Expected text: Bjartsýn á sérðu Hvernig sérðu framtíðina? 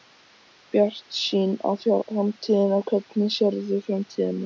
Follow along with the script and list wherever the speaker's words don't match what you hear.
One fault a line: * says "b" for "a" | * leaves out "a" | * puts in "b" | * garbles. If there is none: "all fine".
* says "framtíðina" for "sérðu"